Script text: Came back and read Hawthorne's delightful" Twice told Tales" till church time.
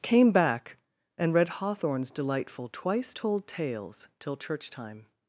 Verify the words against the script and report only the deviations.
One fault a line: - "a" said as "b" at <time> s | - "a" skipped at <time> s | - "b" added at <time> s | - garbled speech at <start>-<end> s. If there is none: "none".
none